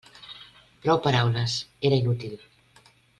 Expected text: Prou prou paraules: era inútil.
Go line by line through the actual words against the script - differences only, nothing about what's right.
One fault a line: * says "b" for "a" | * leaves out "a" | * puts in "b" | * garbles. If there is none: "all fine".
* leaves out "prou"